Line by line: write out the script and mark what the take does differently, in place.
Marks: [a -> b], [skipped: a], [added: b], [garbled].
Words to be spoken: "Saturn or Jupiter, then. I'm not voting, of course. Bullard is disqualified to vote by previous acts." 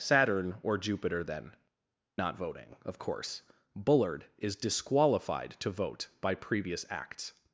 "Saturn or Jupiter, then. [skipped: I'm] not voting, of course. Bullard is disqualified to vote by previous acts."